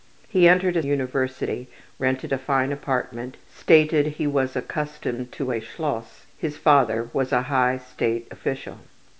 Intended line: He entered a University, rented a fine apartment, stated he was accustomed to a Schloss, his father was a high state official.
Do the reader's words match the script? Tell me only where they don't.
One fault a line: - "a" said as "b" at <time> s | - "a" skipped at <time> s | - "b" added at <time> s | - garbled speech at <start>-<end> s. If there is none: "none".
none